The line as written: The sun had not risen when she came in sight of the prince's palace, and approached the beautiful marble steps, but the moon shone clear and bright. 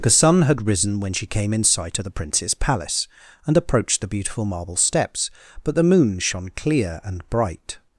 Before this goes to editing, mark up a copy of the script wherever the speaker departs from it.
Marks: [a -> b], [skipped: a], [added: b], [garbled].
The sun had [skipped: not] risen when she came in sight of the prince's palace, and approached the beautiful marble steps, but the moon shone clear and bright.